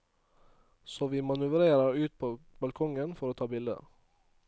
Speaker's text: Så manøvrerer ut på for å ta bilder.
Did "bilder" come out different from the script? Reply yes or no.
no